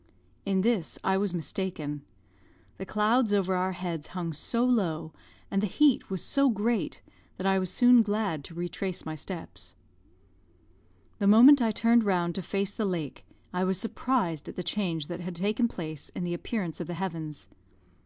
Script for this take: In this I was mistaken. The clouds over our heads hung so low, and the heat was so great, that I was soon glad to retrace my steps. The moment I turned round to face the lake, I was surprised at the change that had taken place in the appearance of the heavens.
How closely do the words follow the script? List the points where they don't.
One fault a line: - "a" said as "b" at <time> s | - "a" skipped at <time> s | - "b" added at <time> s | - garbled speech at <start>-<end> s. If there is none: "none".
none